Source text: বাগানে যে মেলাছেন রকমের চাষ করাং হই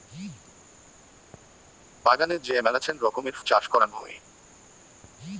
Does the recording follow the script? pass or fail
pass